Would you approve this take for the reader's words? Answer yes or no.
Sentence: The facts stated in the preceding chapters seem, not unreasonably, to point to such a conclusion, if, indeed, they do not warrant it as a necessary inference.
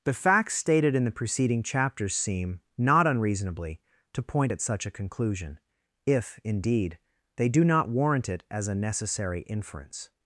no